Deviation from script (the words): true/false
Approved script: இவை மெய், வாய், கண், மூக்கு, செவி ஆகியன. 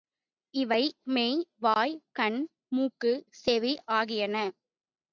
false